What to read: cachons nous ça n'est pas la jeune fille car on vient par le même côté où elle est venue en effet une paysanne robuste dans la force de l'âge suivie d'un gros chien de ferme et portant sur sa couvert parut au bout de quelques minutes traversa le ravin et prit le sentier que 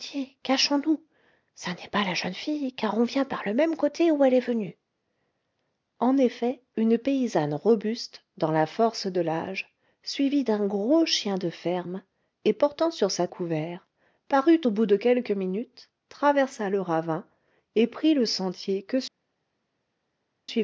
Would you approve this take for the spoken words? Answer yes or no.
yes